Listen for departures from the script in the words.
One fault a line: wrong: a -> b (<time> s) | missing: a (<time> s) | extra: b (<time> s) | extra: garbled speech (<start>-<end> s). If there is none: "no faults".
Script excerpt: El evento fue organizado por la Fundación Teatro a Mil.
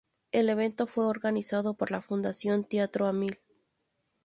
no faults